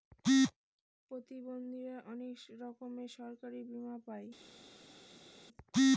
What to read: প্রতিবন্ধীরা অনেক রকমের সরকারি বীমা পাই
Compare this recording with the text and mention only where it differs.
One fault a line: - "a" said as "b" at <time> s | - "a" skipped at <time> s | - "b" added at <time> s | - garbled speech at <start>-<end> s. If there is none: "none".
none